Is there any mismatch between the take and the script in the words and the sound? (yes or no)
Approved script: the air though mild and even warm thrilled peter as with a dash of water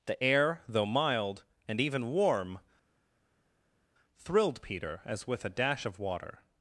no